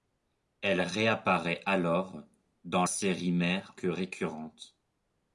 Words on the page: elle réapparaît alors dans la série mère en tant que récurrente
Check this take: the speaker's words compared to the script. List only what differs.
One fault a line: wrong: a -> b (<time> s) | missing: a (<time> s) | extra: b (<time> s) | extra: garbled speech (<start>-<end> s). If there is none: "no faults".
missing: la (2.9 s)
missing: en tant (3.7 s)